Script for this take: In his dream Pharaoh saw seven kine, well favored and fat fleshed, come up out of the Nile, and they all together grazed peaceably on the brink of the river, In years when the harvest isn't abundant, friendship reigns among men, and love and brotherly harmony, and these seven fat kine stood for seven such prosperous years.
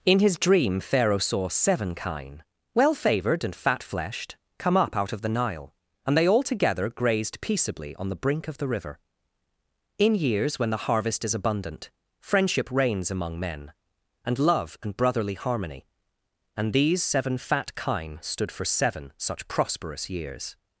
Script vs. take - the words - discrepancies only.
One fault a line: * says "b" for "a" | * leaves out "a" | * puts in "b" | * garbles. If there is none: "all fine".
* says "is" for "isn't"